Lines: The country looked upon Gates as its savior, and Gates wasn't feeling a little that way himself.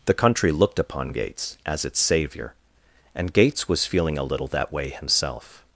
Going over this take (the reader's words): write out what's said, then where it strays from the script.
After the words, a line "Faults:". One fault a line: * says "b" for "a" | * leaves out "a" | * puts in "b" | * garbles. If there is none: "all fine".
The country looked upon Gates as its savior, and Gates was feeling a little that way himself.
Faults:
* says "was" for "wasn't"